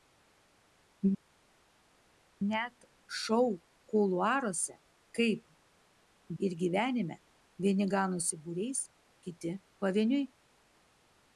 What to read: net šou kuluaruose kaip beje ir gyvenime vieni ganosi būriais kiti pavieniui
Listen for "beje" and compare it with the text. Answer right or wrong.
wrong